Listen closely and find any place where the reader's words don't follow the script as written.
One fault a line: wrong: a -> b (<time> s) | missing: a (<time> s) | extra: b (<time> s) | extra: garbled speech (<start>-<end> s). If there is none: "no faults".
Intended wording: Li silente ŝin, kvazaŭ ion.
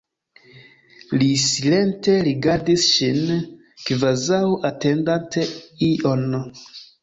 extra: rigardis (2.3 s)
extra: atendante (4.7 s)